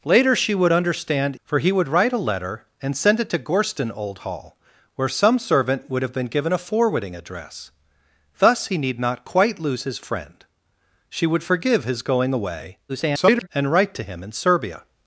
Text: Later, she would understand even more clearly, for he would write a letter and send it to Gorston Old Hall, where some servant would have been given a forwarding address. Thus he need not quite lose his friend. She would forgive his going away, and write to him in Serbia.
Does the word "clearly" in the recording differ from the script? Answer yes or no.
yes